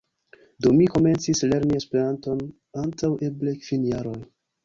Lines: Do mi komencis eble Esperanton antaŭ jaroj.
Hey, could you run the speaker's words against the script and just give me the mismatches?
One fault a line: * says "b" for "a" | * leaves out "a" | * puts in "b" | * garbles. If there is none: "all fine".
* says "lerni" for "eble"
* puts in "eble kvin"